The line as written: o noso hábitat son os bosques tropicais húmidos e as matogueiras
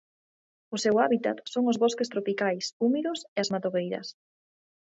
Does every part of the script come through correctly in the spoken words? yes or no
no